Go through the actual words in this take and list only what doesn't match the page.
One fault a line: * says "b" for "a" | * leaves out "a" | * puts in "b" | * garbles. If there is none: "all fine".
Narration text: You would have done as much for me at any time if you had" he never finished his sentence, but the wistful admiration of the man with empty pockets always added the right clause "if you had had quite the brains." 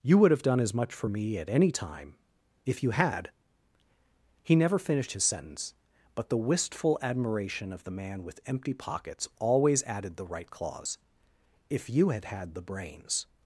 * leaves out "quite"